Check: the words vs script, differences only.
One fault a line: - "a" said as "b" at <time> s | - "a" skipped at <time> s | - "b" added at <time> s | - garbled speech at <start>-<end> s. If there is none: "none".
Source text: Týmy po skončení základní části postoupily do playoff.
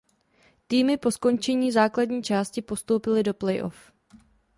none